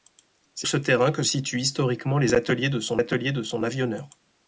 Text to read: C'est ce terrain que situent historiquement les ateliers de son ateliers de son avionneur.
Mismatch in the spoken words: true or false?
false